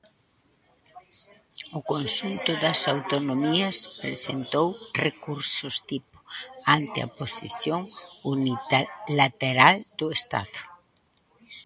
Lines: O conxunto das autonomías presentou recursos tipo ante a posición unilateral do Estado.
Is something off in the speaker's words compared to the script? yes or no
no